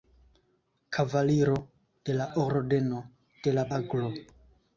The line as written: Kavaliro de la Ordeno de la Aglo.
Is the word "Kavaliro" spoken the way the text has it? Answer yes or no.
yes